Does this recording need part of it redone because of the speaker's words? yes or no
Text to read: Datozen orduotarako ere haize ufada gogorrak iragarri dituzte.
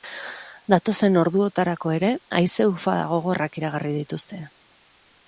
no